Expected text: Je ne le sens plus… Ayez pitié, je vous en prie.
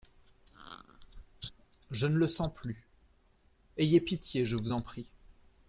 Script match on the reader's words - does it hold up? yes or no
yes